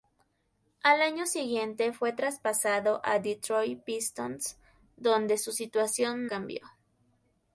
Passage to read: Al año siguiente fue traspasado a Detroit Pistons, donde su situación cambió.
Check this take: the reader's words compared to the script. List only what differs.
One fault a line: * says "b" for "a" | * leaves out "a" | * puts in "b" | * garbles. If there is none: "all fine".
all fine